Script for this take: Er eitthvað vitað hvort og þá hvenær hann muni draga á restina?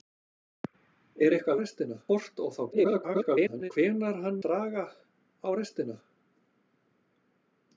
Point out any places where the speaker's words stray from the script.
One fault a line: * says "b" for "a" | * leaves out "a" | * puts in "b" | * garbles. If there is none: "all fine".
* says "restina" for "vitað"
* garbles
* leaves out "muni"